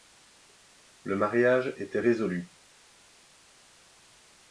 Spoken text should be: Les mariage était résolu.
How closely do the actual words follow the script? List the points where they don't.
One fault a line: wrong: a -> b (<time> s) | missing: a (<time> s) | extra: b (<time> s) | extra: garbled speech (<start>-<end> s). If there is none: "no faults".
wrong: Les -> Le (1.0 s)